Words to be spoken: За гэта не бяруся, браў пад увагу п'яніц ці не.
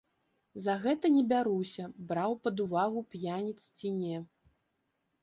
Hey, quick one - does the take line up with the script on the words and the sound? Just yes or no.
yes